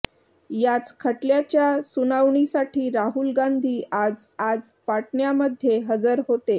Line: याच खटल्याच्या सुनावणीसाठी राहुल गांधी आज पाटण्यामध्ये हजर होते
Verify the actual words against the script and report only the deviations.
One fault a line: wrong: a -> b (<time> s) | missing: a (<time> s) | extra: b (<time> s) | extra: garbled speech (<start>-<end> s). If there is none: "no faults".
extra: आज (4.4 s)